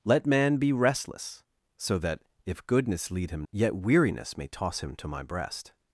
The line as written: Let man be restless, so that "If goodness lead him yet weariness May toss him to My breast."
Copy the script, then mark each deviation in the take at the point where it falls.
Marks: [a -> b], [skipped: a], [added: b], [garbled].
Let man be restless, so that "If goodness lead him yet weariness May toss him to My breast."